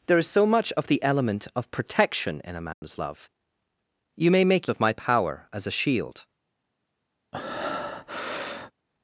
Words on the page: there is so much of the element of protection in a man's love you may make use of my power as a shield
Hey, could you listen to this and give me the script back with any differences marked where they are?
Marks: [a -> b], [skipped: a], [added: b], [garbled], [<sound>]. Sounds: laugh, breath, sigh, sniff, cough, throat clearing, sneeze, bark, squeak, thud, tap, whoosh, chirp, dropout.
there is so much of the element of protection in a man's [dropout] love you may make [skipped: use] of my power as a shield [breath]